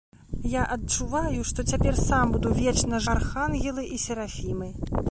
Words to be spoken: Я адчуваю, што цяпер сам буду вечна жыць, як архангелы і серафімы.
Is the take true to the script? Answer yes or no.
no